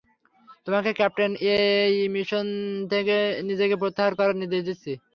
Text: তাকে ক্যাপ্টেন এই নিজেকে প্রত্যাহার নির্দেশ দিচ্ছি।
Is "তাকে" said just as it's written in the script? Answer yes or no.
no